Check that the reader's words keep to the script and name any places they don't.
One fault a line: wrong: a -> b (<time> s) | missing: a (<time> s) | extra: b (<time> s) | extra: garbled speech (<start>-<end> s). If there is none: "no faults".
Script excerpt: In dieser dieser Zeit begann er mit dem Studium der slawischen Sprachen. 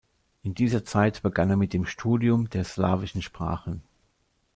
missing: dieser (0.8 s)